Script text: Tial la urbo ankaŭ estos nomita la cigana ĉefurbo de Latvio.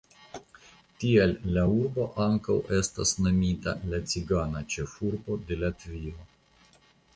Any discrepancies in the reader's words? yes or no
yes